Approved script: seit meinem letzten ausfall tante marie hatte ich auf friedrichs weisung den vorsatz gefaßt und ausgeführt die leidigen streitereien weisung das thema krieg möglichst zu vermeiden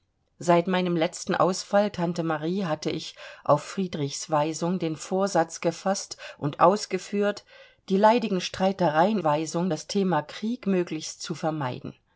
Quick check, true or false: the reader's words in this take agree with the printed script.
true